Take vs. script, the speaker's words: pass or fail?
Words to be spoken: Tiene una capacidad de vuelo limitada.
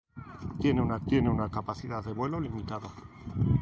fail